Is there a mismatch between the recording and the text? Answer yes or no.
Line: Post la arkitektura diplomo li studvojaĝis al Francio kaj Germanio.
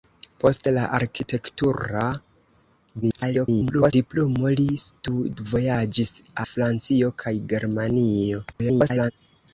yes